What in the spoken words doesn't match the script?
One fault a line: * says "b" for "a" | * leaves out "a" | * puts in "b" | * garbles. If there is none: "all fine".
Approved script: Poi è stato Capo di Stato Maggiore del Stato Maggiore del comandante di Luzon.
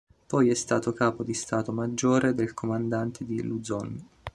* leaves out "Stato Maggiore del"